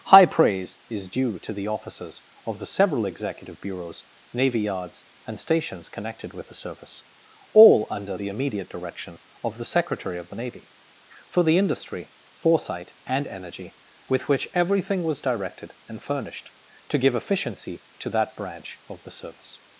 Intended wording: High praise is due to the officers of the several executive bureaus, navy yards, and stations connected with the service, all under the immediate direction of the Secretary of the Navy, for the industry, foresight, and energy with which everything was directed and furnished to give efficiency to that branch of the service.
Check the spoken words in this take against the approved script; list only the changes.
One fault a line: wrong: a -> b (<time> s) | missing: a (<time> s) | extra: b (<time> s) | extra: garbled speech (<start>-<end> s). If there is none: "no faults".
no faults